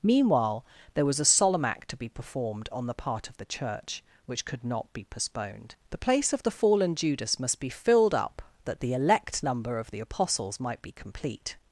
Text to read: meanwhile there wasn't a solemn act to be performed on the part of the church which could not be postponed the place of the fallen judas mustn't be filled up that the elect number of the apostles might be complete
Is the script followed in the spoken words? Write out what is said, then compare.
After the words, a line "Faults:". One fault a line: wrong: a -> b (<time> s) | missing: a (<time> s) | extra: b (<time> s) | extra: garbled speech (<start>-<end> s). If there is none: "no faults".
meanwhile there was a solemn act to be performed on the part of the church which could not be postponed the place of the fallen judas must be filled up that the elect number of the apostles might be complete
Faults:
wrong: wasn't -> was (1.1 s)
wrong: mustn't -> must (7.4 s)